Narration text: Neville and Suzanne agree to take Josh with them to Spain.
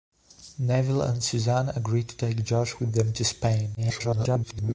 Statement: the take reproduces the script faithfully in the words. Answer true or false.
false